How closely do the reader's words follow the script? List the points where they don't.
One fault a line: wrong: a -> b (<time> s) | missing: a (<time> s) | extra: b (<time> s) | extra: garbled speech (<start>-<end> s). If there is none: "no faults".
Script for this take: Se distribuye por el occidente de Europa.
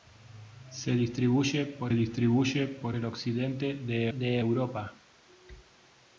extra: distribuye por (1.9 s)
extra: de (4.1 s)